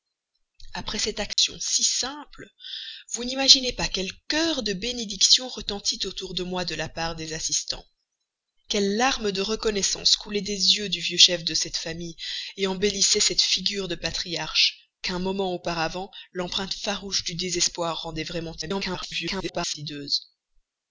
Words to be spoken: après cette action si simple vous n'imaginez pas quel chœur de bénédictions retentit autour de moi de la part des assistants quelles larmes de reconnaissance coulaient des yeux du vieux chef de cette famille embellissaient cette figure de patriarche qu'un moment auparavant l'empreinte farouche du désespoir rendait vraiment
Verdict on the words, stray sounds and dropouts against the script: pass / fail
fail